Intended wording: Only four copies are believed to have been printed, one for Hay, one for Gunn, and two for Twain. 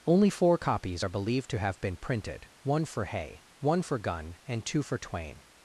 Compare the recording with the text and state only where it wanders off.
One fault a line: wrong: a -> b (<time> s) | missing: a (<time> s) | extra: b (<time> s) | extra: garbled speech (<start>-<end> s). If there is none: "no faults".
no faults